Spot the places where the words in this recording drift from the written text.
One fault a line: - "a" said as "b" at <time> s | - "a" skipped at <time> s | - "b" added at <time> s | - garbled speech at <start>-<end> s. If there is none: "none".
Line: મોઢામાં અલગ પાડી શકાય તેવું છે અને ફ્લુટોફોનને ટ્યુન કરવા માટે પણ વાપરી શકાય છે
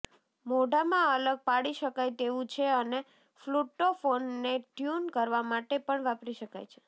none